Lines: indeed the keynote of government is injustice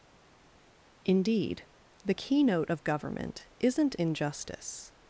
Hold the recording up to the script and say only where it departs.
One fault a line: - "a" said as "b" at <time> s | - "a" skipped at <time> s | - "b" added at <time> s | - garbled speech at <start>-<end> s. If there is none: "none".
- "is" said as "isn't" at 3.6 s